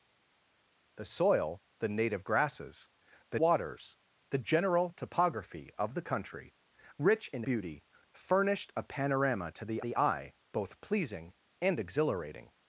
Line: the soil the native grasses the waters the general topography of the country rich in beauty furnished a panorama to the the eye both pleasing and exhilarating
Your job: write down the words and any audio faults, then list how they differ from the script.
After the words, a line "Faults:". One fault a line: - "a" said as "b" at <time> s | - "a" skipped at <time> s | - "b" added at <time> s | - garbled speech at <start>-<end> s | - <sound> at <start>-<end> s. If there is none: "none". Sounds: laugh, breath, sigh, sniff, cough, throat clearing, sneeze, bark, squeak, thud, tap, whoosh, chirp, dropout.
the soil the native grasses the waters the general topography of the country rich in beauty furnished a panorama to the the eye both pleasing and exhilarating
Faults:
none